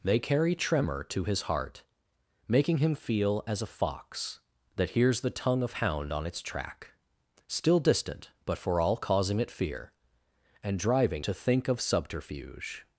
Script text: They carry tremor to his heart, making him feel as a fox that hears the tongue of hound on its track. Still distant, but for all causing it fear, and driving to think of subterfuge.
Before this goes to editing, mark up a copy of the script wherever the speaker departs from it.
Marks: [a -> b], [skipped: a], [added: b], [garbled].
They carry tremor to his heart, making him feel as a fox that hears the tongue of hound on its track. Still distant, but for all causing it fear, and driving to think of subterfuge.